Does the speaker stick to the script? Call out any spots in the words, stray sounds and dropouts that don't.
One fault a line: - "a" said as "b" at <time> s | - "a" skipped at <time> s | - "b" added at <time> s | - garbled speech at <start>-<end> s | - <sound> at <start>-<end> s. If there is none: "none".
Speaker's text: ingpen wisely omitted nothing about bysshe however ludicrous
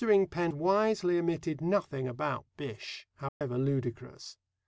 - dropout at 3.3-3.4 s